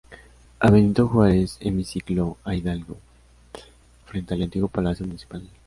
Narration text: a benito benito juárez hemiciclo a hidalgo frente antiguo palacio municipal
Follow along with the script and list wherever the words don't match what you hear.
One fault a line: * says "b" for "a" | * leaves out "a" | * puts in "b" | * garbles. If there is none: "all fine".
* leaves out "benito"
* puts in "al"